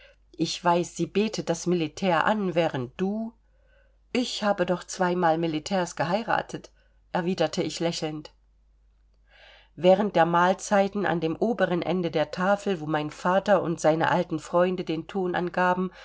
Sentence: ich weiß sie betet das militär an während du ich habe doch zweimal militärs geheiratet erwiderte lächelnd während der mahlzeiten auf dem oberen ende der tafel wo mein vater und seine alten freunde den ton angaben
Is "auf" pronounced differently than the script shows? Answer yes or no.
yes